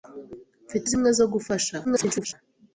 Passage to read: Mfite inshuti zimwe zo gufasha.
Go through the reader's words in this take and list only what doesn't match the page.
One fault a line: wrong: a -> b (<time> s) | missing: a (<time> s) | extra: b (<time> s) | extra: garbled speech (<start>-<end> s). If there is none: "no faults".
missing: inshuti (0.9 s)
extra: garbled speech (1.8-2.3 s)